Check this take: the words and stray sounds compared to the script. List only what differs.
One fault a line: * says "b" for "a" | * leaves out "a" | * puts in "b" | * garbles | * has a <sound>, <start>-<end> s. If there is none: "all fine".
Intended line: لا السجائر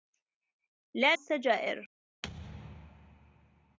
* has a thud, 2.2-3.8 s